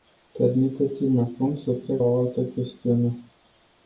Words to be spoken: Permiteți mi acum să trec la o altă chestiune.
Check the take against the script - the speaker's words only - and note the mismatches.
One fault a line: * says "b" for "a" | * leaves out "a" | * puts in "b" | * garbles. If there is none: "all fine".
* leaves out "la"